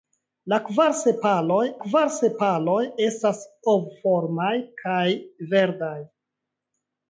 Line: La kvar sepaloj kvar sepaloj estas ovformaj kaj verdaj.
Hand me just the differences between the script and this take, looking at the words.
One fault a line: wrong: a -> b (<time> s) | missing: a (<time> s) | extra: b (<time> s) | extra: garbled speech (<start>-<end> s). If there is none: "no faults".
no faults